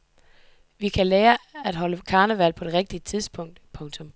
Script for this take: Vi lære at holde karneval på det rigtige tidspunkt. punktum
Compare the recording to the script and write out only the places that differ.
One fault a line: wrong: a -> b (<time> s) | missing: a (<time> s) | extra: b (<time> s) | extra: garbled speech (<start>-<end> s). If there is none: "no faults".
extra: kan (0.9 s)